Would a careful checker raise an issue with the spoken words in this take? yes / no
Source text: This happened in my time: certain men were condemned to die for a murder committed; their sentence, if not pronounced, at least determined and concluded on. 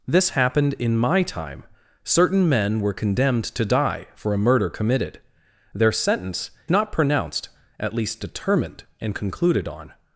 yes